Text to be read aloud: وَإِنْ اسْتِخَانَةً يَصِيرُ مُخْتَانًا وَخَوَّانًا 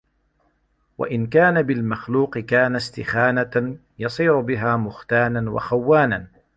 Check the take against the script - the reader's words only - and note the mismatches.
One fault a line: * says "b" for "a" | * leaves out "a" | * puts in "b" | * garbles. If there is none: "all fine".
* puts in "كَانَ بِالْمَخْلُوقِ كَانَ"
* puts in "بِهَا"